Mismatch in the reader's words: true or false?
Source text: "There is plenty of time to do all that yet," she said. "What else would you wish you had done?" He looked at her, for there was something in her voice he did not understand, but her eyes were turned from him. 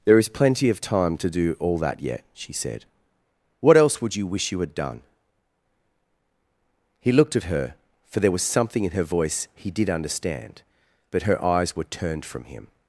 true